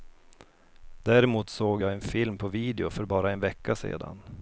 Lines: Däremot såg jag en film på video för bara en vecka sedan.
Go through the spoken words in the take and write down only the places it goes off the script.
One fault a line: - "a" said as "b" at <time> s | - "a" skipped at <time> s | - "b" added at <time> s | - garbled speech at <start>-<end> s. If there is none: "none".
none